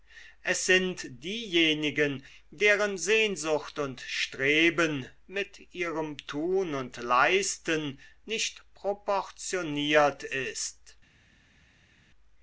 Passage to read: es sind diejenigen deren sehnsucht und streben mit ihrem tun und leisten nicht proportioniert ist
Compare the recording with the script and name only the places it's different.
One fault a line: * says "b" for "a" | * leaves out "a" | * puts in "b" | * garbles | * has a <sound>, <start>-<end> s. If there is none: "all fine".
all fine